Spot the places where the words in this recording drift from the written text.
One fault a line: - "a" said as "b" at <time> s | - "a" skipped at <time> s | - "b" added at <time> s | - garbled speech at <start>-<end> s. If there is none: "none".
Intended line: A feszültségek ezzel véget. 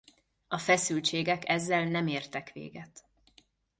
- "nem értek" added at 1.8 s